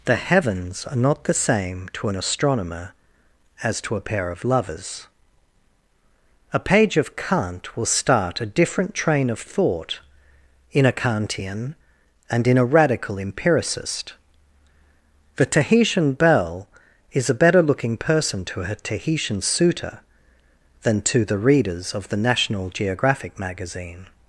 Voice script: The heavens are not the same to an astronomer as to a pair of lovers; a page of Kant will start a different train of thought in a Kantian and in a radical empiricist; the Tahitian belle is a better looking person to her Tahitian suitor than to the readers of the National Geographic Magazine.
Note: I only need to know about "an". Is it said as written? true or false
true